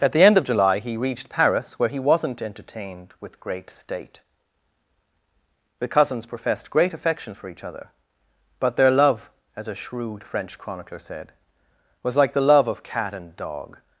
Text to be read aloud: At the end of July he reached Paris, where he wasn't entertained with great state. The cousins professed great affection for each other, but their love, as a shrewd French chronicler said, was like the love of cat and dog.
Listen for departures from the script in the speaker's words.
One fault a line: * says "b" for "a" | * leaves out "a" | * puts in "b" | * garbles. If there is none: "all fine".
all fine